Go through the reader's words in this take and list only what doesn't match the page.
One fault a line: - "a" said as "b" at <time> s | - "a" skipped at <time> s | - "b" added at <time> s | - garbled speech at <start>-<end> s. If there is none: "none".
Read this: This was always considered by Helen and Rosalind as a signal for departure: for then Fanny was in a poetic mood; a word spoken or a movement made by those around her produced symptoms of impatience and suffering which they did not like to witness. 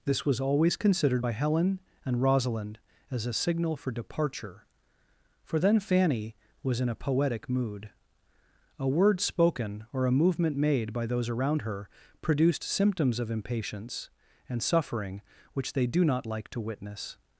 - "did" said as "do" at 15.9 s